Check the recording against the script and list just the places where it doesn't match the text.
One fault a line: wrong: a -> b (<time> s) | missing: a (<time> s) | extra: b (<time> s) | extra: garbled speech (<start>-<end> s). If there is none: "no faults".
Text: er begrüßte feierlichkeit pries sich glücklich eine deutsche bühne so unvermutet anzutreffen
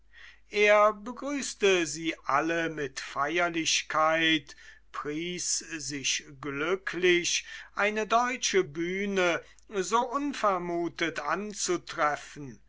extra: sie alle mit (1.9 s)